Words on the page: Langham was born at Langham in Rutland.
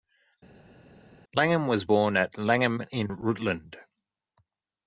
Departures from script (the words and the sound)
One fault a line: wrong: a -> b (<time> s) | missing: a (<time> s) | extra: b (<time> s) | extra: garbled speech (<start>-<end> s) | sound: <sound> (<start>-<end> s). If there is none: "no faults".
no faults